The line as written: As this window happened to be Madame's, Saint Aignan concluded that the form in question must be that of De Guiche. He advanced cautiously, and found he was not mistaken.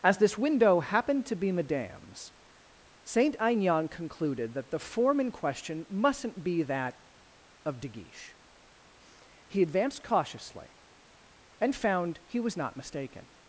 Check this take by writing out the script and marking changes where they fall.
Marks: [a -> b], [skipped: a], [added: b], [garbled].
As this window happened to be Madame's, Saint Aignan concluded that the form in question [must -> mustn't] be that of De Guiche. He advanced cautiously, and found he was not mistaken.